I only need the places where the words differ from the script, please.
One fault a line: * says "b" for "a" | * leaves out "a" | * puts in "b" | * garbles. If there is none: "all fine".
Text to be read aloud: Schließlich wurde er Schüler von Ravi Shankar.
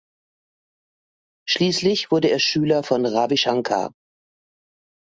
all fine